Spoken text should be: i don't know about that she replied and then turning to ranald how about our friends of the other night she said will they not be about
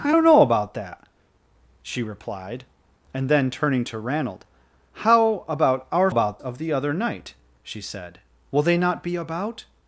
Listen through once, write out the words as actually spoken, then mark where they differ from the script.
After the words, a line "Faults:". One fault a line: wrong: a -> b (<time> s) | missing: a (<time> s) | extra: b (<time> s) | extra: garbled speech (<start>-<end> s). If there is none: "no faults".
i don't know about that she replied and then turning to ranald how about our about of the other night she said will they not be about
Faults:
wrong: friends -> about (6.1 s)